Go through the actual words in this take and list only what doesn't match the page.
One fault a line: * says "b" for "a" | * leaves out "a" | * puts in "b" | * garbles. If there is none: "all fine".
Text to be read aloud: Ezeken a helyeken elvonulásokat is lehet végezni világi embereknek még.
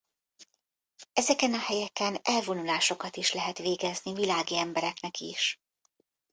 * says "is" for "még"